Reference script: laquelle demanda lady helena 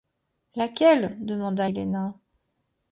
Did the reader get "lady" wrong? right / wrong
wrong